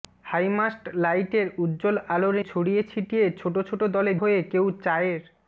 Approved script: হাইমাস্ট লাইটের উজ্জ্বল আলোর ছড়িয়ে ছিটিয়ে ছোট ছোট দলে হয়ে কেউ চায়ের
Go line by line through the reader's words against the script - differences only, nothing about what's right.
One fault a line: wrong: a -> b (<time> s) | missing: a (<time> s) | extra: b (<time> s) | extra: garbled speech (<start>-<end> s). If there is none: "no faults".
no faults